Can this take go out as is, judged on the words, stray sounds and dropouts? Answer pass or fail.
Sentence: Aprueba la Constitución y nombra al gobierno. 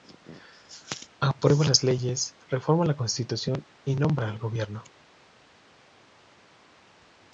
fail